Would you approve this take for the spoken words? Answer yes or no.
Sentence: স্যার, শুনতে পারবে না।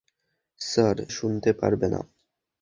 yes